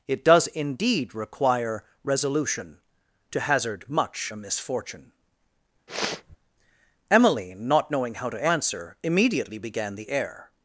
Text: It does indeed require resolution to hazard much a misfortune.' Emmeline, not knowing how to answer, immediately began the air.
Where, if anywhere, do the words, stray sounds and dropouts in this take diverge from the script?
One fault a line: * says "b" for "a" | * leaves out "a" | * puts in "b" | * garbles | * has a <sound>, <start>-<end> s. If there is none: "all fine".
* has a sniff, 5.9-6.4 s